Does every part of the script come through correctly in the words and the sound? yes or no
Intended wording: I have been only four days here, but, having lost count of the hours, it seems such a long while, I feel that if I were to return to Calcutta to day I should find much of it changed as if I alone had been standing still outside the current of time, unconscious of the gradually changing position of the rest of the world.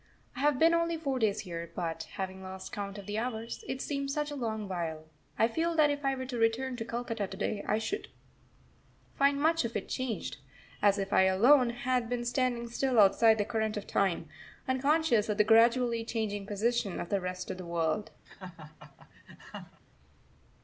no